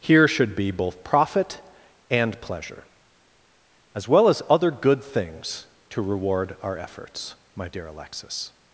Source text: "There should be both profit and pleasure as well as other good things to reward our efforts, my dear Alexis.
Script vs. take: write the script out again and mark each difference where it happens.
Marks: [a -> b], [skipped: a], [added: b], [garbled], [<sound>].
["There -> Here] should be both profit and pleasure as well as other good things to reward our efforts, my dear Alexis.